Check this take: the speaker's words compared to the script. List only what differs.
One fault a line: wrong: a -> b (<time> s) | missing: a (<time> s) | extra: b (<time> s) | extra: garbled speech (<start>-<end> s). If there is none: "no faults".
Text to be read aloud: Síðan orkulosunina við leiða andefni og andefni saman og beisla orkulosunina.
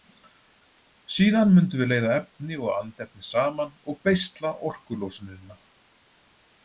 wrong: orkulosunina -> mundum (1.6 s)
wrong: andefni -> efni (2.2 s)